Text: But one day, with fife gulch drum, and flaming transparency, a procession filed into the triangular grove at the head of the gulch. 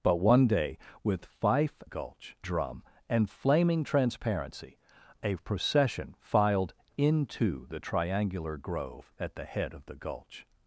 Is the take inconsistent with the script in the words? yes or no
no